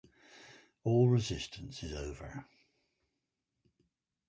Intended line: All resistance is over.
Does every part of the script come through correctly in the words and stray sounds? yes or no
yes